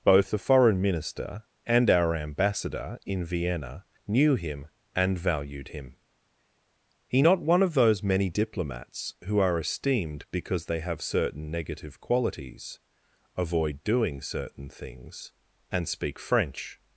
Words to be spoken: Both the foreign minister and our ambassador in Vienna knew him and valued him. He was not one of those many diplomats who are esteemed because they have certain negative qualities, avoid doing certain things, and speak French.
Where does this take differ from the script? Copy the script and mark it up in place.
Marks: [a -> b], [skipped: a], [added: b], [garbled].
Both the foreign minister and our ambassador in Vienna knew him and valued him. He [skipped: was] not one of those many diplomats who are esteemed because they have certain negative qualities, avoid doing certain things, and speak French.